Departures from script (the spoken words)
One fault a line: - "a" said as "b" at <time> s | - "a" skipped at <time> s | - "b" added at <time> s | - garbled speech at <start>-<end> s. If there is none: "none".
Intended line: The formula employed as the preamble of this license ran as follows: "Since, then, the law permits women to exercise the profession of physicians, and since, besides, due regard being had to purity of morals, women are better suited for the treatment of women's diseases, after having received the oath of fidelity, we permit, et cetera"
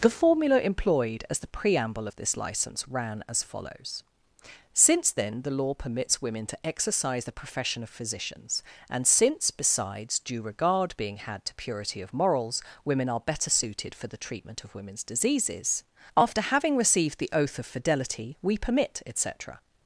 none